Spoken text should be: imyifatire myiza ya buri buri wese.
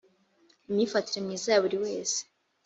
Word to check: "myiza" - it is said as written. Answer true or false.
true